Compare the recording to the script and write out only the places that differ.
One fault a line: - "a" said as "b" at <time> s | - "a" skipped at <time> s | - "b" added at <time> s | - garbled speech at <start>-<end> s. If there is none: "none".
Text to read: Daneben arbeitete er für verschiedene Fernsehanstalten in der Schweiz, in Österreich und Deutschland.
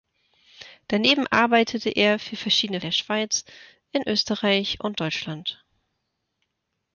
- "Fernsehanstalten in" skipped at 2.8 s